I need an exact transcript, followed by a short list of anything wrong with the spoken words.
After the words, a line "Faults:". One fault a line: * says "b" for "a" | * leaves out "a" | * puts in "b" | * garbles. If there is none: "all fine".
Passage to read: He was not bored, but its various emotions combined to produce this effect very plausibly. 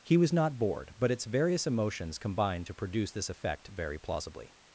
He was not bored, but its various emotions combined to produce this effect very plausibly.
Faults:
all fine